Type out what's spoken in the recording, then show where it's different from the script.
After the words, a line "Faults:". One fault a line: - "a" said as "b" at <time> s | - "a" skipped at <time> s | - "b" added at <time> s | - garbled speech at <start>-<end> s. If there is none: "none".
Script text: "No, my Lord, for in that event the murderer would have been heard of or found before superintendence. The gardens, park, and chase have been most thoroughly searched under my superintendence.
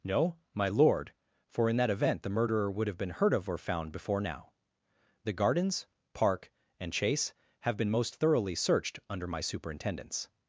"No, my Lord, for in that event the murderer would have been heard of or found before now. The gardens, park, and chase have been most thoroughly searched under my superintendence.
Faults:
- "superintendence" said as "now" at 4.2 s